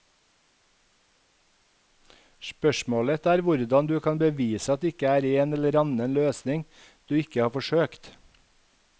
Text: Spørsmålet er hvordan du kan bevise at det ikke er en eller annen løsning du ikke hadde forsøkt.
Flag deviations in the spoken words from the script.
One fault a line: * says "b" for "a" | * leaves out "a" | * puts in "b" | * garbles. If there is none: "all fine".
* says "har" for "hadde"